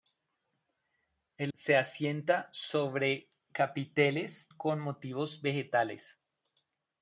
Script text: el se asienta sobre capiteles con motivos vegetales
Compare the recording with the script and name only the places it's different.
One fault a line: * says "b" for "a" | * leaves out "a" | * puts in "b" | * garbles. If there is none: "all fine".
all fine